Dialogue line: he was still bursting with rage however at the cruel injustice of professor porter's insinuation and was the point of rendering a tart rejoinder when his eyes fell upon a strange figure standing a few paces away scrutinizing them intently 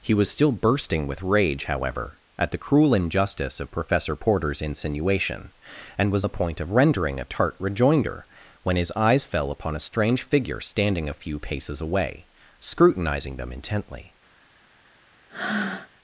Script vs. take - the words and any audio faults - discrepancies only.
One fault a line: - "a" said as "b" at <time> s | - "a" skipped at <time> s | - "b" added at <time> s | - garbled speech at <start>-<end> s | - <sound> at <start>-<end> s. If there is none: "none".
- breath at 15.3-15.9 s